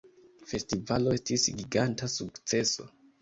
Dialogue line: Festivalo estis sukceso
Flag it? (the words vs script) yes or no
yes